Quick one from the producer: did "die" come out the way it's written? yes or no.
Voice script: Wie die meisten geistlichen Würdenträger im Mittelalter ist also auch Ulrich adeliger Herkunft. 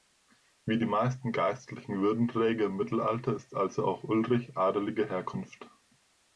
yes